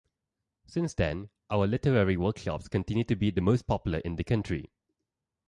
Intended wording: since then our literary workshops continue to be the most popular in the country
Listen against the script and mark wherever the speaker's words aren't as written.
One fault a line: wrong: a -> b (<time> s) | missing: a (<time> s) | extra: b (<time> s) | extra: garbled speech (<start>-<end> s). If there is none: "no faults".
no faults